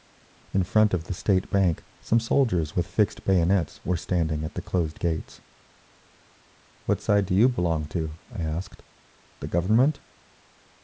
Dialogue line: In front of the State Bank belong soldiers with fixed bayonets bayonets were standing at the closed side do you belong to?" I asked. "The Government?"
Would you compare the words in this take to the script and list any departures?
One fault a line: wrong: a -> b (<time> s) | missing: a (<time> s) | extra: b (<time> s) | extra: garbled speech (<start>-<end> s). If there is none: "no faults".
wrong: belong -> some (2.0 s)
missing: bayonets (3.8 s)
extra: gates What (5.0 s)